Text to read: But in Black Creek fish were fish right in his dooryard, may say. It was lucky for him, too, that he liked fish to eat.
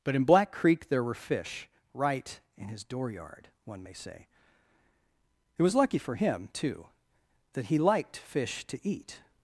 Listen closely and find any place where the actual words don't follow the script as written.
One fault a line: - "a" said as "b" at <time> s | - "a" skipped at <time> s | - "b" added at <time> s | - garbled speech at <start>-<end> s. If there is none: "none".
- "fish" said as "there" at 0.9 s
- "one" added at 3.6 s